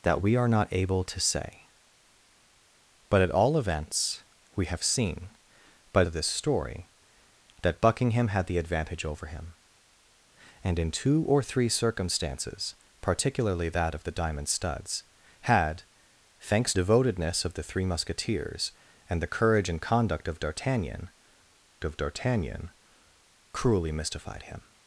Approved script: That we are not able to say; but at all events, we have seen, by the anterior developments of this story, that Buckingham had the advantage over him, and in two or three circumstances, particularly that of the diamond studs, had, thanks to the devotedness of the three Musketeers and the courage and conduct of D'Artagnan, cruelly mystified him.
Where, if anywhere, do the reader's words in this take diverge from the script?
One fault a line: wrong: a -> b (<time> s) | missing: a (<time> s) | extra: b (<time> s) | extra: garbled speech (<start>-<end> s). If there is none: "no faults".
missing: the anterior developments (6.0 s)
missing: to the (16.7 s)
extra: of D'Artagnan (21.8 s)